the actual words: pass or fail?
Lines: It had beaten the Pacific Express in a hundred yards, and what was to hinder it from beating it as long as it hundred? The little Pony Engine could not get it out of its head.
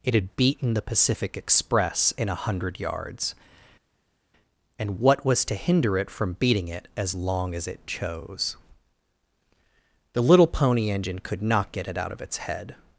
fail